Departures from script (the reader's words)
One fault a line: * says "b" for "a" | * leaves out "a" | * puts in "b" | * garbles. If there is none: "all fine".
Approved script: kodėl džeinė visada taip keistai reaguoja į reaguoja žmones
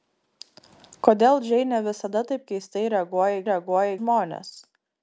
all fine